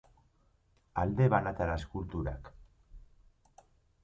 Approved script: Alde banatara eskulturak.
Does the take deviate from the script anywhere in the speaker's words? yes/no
no